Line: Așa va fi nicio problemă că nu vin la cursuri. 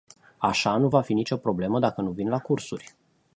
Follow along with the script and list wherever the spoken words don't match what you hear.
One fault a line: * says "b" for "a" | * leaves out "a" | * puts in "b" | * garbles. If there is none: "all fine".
* puts in "nu"
* says "dacă" for "că"